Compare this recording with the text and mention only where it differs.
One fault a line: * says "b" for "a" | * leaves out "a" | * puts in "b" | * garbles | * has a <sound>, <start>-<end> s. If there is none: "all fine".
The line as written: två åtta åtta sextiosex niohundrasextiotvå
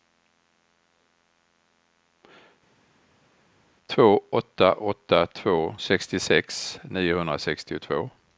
* puts in "två"